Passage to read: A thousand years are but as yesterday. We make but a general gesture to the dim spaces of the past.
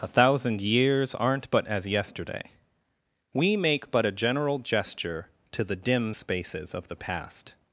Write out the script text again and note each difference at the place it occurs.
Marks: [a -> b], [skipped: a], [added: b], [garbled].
A thousand years [are -> aren't] but as yesterday. We make but a general gesture to the dim spaces of the past.